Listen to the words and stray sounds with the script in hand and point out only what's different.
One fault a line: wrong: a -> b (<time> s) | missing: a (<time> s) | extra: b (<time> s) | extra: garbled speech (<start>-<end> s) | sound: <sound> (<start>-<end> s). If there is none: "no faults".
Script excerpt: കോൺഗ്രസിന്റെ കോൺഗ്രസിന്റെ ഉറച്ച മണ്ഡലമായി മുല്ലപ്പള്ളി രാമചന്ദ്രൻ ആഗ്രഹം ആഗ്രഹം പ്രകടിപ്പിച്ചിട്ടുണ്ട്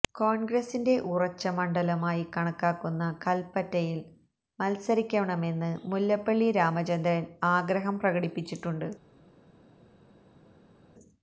missing: കോൺഗ്രസിന്റെ (0.9 s)
extra: കണക്കാക്കുന്ന കൽപ്പറ്റയിൽ മത്സരിക്കണമെന്ന് (2.4 s)
missing: ആഗ്രഹം (8.0 s)